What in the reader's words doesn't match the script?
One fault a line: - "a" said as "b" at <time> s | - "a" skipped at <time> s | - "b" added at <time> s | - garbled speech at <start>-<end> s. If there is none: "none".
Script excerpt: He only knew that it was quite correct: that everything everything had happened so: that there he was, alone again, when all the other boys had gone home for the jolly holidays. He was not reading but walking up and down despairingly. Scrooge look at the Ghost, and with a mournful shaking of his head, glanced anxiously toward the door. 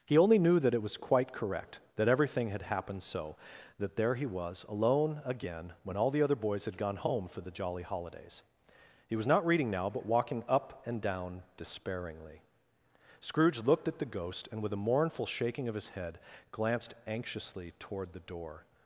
- "everything" skipped at 2.5 s
- "now" added at 9.7 s
- "look" said as "looked" at 13.6 s